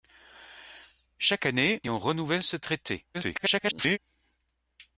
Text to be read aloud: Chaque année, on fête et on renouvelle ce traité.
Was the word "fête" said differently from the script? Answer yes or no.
yes